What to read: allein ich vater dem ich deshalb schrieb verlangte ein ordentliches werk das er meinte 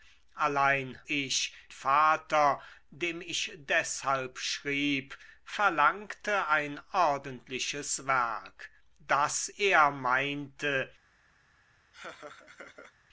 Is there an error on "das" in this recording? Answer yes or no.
no